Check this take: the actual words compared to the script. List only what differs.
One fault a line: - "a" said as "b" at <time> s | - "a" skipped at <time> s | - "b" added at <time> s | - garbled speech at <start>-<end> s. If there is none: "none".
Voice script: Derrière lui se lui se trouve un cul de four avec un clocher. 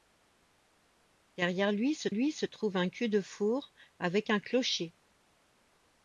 none